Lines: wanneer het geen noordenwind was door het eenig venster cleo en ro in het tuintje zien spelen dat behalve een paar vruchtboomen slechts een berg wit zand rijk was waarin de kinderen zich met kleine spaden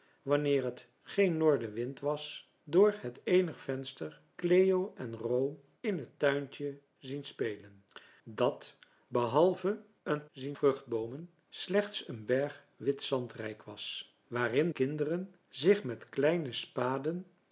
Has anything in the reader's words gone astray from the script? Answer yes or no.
yes